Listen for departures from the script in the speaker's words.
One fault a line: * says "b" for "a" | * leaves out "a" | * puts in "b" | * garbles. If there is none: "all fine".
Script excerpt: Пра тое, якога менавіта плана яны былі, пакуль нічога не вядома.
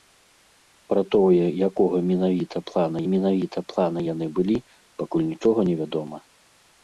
* puts in "менавіта плана"